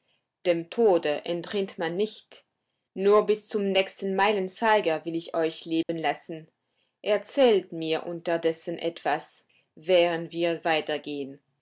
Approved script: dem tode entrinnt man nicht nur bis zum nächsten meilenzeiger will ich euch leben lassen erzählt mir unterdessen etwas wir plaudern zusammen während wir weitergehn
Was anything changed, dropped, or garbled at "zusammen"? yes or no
yes